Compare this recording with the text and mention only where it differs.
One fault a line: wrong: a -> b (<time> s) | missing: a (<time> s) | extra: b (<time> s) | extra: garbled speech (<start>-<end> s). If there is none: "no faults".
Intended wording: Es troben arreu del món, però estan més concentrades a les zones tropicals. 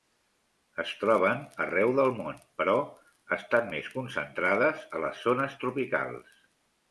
no faults